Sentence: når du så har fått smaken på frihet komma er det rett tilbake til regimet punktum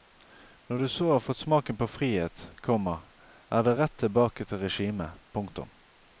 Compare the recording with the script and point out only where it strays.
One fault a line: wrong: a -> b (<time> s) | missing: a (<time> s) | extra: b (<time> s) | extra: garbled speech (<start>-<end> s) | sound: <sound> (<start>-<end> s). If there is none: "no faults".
no faults